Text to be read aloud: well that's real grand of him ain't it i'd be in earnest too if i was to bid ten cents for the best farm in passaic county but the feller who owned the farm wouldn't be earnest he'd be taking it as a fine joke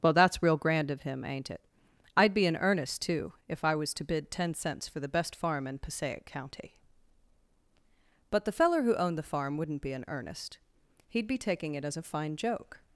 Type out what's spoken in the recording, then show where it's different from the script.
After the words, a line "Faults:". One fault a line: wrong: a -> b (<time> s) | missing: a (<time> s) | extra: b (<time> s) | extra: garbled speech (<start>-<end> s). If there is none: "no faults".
well that's real grand of him ain't it i'd be in earnest too if i was to bid ten cents for the best farm in passaic county but the feller who owned the farm wouldn't be in earnest he'd be taking it as a fine joke
Faults:
extra: in (9.9 s)